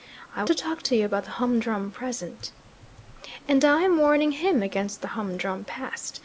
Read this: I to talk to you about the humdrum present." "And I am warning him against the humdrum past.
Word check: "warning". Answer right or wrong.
right